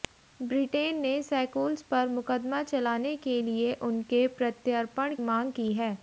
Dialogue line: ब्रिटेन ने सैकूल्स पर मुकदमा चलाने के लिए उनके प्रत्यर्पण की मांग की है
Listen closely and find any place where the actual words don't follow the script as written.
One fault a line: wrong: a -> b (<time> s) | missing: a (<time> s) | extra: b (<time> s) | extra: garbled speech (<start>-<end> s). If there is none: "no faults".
missing: की (5.2 s)